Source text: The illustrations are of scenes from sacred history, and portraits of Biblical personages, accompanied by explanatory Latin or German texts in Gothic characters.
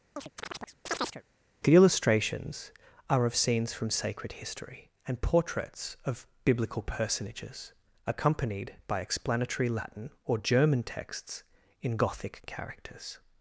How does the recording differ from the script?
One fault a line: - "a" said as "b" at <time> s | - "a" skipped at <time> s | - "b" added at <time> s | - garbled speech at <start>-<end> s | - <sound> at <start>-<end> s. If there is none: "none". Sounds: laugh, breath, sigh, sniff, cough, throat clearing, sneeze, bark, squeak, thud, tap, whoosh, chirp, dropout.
- chirp at 0.2-1.2 s